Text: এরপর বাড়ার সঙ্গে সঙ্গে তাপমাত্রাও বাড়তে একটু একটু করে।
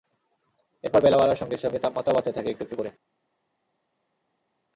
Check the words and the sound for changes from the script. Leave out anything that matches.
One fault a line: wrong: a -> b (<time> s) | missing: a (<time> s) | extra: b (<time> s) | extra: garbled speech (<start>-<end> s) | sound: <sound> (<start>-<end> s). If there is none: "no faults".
extra: বেলা (1.0 s)
extra: থাকে (2.3 s)